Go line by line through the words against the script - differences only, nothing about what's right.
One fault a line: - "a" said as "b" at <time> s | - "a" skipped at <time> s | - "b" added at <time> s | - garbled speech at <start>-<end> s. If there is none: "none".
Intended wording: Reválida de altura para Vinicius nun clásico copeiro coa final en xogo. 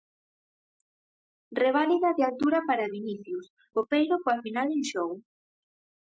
- "nun clásico" skipped at 3.5 s